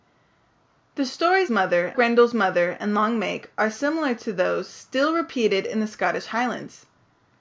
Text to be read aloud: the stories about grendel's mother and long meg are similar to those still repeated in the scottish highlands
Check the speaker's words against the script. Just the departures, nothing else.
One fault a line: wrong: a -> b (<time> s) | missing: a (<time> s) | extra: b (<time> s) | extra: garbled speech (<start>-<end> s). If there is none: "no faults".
wrong: about -> mother (1.5 s)